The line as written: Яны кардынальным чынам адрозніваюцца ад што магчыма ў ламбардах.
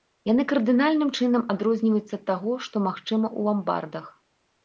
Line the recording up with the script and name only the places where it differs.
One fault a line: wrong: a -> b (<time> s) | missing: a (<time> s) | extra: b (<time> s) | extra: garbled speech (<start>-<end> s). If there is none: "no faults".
extra: таго (2.3 s)